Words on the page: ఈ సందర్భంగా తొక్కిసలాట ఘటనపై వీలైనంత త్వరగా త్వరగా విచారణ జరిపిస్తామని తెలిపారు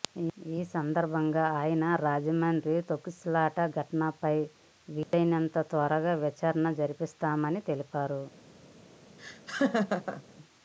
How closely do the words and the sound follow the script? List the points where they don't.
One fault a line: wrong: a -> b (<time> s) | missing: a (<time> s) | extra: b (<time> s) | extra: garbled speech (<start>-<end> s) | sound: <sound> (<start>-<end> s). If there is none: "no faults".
extra: ఆయన రాజమండ్రి (1.6 s)
sound: dropout (5.0-5.1 s)
missing: త్వరగా (6.2 s)
sound: laugh (9.2-10.2 s)